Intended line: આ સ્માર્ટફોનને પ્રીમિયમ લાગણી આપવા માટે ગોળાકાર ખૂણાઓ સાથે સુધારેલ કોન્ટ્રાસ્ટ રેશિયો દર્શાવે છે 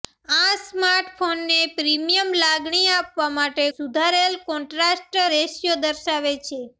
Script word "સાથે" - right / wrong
wrong